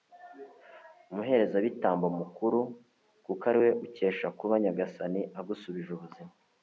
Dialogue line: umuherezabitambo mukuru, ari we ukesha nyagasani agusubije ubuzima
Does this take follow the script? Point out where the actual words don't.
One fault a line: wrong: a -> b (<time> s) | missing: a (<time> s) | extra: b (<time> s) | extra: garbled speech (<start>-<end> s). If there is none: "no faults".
extra: kuko (3.2 s)
extra: kuba (4.4 s)